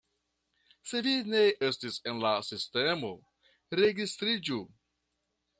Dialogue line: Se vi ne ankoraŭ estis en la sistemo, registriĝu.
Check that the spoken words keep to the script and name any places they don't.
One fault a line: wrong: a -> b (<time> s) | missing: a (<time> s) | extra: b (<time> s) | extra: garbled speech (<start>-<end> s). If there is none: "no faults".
missing: ankoraŭ (1.4 s)